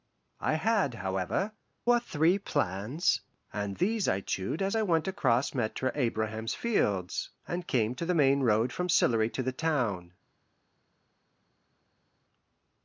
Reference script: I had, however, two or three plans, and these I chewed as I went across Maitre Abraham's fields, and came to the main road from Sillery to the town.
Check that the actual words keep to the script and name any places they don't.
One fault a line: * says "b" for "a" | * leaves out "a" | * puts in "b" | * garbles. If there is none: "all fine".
* leaves out "two"